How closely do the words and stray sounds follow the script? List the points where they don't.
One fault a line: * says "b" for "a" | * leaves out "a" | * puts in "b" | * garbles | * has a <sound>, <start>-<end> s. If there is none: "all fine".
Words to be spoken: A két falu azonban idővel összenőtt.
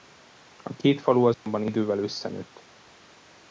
* has a dropout, 1.3-1.5 s